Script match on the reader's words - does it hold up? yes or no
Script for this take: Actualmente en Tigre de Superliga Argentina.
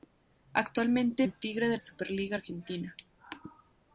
yes